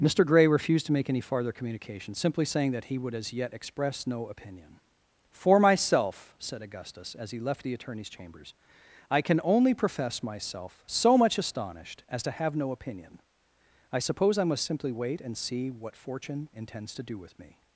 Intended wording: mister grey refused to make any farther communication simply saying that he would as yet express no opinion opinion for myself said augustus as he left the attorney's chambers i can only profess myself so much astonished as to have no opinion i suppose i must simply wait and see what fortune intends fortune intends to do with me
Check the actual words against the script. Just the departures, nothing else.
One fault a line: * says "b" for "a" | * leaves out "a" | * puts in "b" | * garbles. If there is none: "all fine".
* leaves out "opinion"
* leaves out "fortune intends"